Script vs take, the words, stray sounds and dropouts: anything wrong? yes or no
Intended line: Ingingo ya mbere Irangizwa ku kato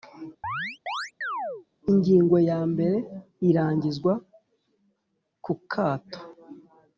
yes